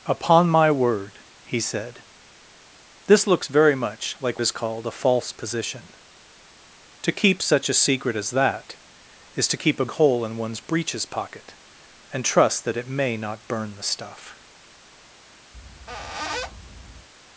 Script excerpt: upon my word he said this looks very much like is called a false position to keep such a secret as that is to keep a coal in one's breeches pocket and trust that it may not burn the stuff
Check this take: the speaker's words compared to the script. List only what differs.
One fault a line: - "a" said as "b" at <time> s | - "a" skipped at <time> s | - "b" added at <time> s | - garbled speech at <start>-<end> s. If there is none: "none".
none